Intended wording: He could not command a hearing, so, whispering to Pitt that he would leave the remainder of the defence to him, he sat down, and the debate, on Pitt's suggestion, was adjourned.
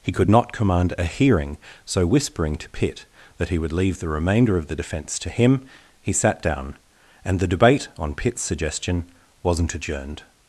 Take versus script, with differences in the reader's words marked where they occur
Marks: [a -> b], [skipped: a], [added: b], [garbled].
He could not command a hearing, so, whispering to Pitt that he would leave the remainder of the defence to him, he sat down, and the debate, on Pitt's suggestion, [was -> wasn't] adjourned.